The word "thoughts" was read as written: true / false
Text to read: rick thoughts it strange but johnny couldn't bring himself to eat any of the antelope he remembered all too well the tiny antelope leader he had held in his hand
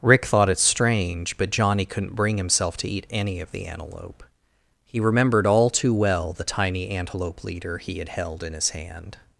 false